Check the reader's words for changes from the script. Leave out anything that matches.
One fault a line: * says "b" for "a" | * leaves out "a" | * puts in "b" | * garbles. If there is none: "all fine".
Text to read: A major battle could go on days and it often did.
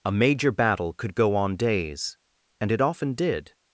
all fine